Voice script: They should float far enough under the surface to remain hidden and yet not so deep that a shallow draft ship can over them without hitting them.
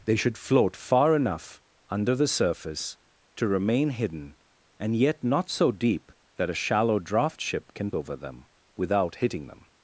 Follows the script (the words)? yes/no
yes